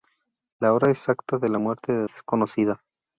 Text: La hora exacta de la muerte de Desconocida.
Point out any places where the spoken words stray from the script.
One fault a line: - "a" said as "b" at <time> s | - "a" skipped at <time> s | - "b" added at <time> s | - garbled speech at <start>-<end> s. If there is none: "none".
none